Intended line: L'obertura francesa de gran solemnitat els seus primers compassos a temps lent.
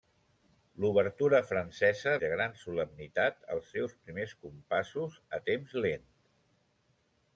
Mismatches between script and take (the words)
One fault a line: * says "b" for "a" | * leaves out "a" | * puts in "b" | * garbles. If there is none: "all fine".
all fine